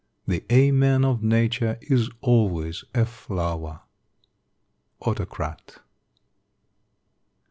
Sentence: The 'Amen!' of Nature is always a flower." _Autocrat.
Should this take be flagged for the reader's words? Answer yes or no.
no